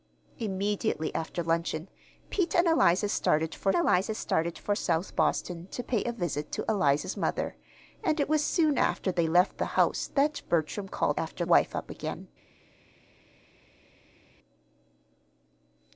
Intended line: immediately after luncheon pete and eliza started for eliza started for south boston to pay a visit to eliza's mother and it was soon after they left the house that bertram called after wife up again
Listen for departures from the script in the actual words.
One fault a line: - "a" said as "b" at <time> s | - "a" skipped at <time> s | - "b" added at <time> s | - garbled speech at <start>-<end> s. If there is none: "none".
none